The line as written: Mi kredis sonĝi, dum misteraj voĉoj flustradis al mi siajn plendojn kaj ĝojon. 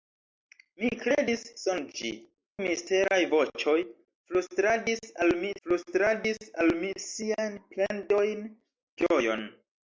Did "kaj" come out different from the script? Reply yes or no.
yes